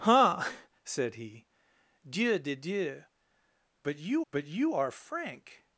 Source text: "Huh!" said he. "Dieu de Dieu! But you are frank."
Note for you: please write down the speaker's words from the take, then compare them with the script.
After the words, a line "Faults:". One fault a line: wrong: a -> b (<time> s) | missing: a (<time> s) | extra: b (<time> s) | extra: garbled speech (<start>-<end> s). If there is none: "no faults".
"Huh!" said he. "Dieu de Dieu! But you but you are frank."
Faults:
extra: but you (4.3 s)